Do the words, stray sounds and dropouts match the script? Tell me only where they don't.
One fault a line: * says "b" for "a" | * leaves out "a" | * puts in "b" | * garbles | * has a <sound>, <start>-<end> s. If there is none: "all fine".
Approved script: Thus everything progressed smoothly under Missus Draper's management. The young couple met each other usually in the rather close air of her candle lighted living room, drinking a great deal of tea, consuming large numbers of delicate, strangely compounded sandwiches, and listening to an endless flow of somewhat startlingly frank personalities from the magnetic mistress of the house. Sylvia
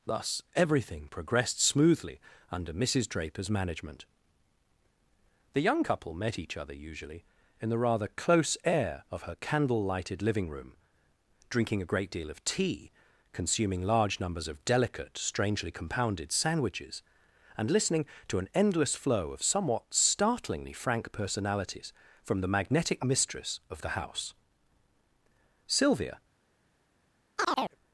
* has a chirp, 27.4-27.8 s